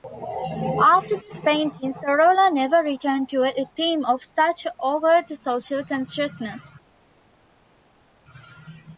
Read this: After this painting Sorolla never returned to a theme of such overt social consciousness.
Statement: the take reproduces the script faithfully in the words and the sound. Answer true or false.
true